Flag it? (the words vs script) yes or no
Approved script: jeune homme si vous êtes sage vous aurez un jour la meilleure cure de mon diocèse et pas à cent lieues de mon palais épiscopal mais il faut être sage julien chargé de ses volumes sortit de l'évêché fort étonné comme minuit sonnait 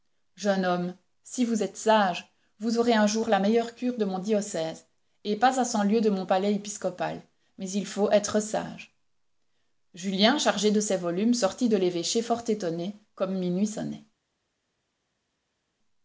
no